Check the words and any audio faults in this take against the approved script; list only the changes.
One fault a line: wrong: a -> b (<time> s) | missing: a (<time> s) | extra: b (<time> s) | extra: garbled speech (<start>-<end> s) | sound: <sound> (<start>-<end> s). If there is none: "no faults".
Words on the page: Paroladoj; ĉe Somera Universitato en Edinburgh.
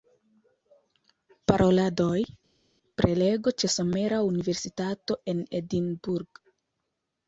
extra: prelego (3.0 s)